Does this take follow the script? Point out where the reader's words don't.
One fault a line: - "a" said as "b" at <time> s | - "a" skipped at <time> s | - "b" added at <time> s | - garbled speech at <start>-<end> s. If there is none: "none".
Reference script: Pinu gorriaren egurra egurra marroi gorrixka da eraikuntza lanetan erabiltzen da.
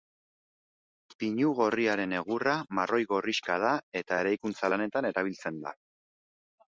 - "egurra" skipped at 2.5 s
- "eta" added at 4.0 s